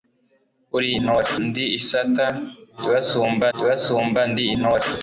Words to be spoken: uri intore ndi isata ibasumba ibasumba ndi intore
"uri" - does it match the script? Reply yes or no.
yes